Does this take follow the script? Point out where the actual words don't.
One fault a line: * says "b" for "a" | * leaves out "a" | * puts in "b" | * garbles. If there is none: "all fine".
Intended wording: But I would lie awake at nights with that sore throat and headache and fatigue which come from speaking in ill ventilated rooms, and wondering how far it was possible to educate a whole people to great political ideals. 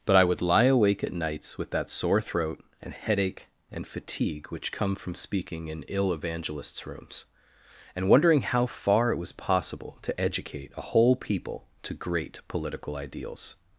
* says "evangelists" for "ventilated"